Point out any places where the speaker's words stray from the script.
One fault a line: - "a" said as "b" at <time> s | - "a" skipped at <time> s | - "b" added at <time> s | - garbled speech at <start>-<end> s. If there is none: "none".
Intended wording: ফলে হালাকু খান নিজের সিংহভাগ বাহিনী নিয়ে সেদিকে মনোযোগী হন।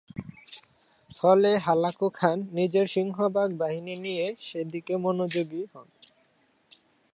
none